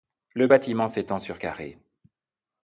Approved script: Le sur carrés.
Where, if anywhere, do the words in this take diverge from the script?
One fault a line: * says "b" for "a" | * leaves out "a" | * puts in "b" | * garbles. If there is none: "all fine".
* puts in "bâtiment s'étend"